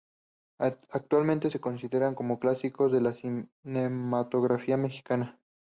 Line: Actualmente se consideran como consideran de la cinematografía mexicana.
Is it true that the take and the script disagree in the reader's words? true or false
true